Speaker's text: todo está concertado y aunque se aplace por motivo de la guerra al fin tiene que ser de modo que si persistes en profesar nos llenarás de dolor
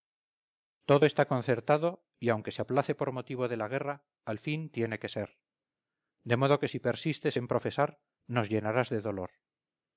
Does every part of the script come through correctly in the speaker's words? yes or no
yes